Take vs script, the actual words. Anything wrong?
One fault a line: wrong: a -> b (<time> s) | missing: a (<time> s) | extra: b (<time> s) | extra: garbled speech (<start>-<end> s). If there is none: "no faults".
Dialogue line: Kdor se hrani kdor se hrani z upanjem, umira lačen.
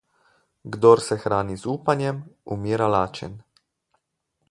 missing: kdor se hrani (1.6 s)